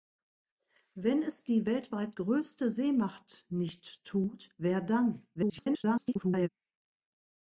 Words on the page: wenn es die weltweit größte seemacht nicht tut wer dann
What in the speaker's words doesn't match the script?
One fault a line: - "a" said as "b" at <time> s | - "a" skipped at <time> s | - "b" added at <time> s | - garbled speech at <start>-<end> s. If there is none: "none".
- garbled speech at 5.3-6.5 s